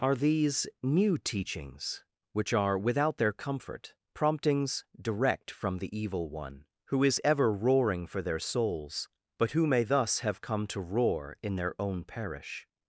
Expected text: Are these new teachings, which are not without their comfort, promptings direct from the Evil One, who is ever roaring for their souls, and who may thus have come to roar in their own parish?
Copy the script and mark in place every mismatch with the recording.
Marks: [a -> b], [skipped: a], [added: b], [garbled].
Are these new teachings, which are [skipped: not] without their comfort, promptings direct from the Evil One, who is ever roaring for their souls, [and -> but] who may thus have come to roar in their own parish?